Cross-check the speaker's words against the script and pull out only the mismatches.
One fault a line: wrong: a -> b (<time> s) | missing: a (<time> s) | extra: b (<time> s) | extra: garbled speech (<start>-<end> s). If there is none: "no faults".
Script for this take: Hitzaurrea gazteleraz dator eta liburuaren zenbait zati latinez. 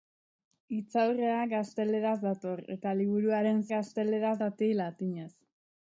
wrong: zenbait -> gazteleraz (3.7 s)